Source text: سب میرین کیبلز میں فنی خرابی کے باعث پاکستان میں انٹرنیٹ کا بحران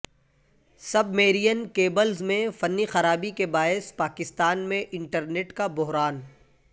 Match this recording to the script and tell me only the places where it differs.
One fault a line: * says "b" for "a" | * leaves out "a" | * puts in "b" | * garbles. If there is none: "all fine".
all fine